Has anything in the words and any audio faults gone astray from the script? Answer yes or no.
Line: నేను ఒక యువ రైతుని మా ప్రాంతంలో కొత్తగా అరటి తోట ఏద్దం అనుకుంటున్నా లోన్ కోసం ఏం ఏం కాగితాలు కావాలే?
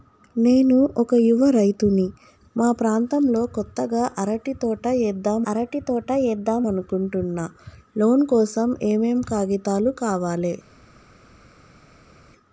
yes